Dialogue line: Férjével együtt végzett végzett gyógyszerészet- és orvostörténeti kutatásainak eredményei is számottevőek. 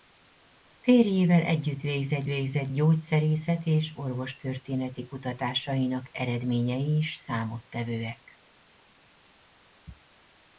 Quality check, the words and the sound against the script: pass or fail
pass